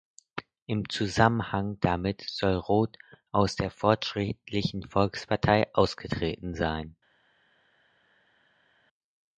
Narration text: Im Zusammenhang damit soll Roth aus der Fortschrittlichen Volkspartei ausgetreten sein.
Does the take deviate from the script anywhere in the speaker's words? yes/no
no